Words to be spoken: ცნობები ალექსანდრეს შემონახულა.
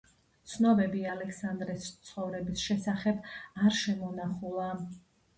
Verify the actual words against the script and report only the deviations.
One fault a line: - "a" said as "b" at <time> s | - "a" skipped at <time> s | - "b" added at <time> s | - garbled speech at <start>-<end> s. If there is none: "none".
- "ცხოვრების შესახებ არ" added at 2.1 s